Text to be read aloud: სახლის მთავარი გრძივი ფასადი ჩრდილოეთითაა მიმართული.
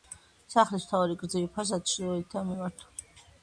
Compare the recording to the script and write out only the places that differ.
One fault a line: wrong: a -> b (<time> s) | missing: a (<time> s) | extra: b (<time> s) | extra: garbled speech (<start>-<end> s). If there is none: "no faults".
no faults